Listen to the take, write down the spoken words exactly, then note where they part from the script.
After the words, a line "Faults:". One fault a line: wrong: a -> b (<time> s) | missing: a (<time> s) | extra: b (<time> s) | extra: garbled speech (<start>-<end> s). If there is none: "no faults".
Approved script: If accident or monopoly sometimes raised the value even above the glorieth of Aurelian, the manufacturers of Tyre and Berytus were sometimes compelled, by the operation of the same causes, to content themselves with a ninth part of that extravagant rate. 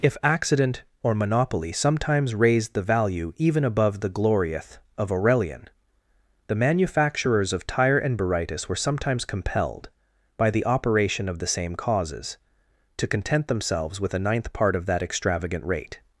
If accident or monopoly sometimes raised the value even above the glorieth of Aurelian, the manufacturers of Tyre and Berytus were sometimes compelled, by the operation of the same causes, to content themselves with a ninth part of that extravagant rate.
Faults:
no faults